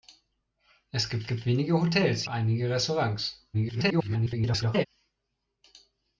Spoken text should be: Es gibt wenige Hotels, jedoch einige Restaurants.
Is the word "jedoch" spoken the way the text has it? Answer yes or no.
no